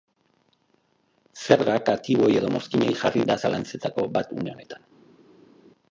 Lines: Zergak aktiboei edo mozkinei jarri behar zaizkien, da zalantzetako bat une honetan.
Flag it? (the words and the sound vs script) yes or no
yes